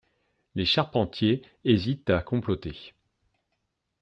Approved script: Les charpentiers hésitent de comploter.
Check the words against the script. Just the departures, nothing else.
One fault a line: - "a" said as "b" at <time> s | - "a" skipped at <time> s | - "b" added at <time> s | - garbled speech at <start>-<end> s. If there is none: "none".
- "de" said as "à" at 2.1 s